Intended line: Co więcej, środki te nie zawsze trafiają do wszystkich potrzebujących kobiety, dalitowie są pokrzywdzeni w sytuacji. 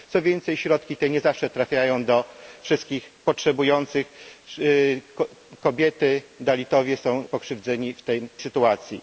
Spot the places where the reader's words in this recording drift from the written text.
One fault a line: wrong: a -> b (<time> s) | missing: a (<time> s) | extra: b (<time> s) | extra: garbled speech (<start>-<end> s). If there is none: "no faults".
no faults